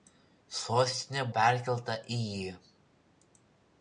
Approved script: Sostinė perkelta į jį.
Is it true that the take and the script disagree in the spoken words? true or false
false